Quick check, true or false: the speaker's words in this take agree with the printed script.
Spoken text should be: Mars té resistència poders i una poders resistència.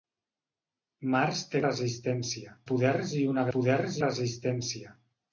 true